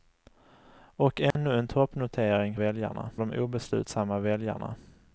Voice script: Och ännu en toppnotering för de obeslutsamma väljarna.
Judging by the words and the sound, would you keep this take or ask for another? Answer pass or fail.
fail